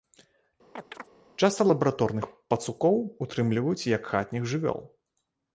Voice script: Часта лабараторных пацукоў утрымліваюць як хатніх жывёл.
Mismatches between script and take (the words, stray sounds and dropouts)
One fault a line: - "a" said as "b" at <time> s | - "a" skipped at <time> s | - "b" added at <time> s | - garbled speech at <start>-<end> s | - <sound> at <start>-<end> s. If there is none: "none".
- chirp at 0.7-1.1 s